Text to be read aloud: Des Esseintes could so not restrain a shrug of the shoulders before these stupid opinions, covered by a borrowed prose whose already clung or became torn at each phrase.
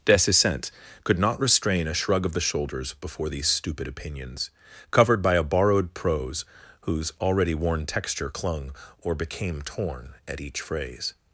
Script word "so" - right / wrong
wrong